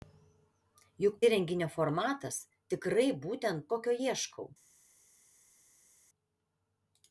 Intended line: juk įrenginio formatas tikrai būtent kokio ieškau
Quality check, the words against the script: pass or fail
pass